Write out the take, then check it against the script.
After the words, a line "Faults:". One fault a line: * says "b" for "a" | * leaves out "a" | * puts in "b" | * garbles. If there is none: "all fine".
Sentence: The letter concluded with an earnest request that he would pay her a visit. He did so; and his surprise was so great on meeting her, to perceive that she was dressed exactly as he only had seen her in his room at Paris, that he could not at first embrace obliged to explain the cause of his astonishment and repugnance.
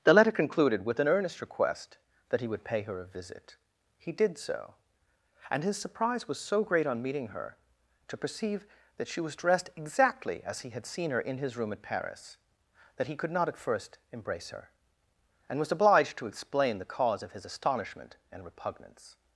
The letter concluded with an earnest request that he would pay her a visit. He did so; and his surprise was so great on meeting her, to perceive that she was dressed exactly as he had seen her in his room at Paris, that he could not at first embrace her, and was obliged to explain the cause of his astonishment and repugnance.
Faults:
* leaves out "only"
* puts in "her and was"